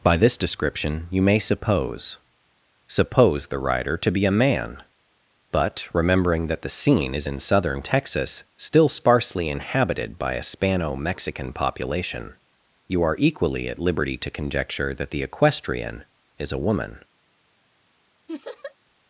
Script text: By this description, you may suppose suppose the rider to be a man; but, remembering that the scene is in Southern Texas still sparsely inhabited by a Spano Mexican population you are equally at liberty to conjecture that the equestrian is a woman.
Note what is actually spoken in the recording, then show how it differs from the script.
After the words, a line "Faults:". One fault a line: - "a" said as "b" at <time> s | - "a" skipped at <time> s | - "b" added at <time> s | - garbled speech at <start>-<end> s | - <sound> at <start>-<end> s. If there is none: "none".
By this description, you may suppose suppose the rider to be a man; but, remembering that the scene is in Southern Texas still sparsely inhabited by a Spano Mexican population you are equally at liberty to conjecture that the equestrian is a woman.
Faults:
- laugh at 18.3-18.7 s